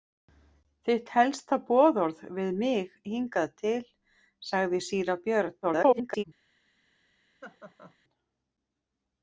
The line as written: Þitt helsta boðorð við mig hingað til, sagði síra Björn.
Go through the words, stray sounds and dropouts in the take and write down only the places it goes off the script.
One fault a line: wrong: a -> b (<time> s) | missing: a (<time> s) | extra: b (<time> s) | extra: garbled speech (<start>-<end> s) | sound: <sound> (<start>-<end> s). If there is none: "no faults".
extra: garbled speech (5.6-6.2 s)
sound: laugh (7.4-8.0 s)